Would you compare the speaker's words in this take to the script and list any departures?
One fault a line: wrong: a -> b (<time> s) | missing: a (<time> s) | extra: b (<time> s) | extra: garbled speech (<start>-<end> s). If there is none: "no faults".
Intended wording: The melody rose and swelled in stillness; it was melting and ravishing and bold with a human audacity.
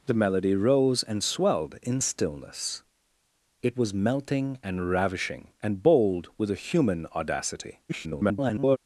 extra: garbled speech (7.9-8.8 s)